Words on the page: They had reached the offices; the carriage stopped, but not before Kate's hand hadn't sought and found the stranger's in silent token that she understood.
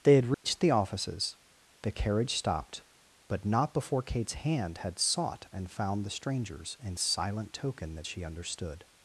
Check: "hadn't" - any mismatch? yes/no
yes